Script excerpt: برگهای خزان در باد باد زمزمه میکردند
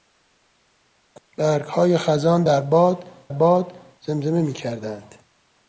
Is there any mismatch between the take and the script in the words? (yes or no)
no